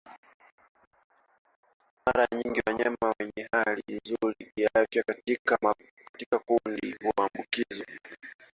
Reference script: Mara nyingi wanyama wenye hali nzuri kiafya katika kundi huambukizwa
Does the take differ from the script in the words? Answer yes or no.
no